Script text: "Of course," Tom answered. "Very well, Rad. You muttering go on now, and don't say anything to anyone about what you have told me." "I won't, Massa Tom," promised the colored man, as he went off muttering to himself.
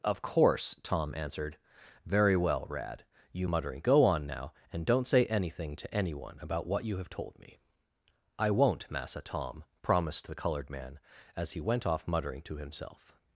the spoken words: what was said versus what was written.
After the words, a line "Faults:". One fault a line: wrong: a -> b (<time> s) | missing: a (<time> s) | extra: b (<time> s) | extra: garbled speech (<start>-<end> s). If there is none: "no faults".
"Of course," Tom answered. "Very well, Rad. You muttering go on now, and don't say anything to anyone about what you have told me." "I won't, Massa Tom," promised the colored man, as he went off muttering to himself.
Faults:
no faults